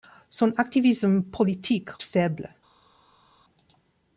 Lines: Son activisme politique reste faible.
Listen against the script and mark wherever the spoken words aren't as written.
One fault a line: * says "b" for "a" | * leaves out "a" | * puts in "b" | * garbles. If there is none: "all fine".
* leaves out "reste"